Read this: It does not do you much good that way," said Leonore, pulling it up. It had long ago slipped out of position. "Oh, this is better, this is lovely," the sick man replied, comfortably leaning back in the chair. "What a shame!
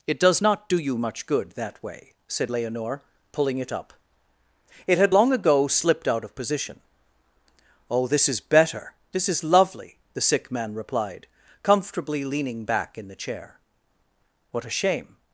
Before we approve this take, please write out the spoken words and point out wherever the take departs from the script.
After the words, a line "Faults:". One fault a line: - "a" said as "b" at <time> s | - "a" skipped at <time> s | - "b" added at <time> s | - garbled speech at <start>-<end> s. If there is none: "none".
It does not do you much good that way," said Leonore, pulling it up. It had long ago slipped out of position. "Oh, this is better, this is lovely," the sick man replied, comfortably leaning back in the chair. "What a shame!
Faults:
none